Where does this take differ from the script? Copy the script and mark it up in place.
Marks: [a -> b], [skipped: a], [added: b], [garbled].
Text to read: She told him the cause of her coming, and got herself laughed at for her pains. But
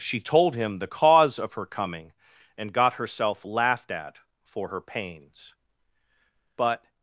She told him the cause of her coming, and got herself laughed at for her pains. But